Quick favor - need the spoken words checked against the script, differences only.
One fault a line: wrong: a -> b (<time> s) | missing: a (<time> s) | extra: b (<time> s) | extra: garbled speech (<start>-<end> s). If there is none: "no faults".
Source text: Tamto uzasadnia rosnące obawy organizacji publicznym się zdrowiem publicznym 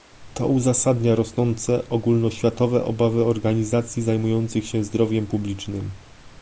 wrong: Tamto -> To (0.3 s)
extra: ogólnoświatowe (1.9 s)
wrong: publicznym -> zajmujących (4.0 s)